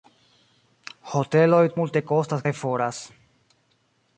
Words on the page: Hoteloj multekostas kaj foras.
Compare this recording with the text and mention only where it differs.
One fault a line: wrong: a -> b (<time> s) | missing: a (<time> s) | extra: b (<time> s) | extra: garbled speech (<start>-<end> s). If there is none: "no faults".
no faults